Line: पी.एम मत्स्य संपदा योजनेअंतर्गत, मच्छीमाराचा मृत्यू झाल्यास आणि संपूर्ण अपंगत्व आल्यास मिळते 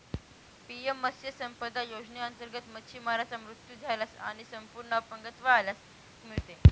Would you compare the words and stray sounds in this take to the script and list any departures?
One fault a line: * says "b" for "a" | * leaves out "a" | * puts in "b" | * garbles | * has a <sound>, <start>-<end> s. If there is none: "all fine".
all fine